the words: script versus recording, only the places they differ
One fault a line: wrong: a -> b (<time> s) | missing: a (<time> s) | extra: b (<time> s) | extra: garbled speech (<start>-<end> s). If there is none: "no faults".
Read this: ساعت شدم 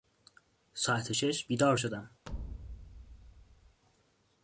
extra: شش بیدار (1.1 s)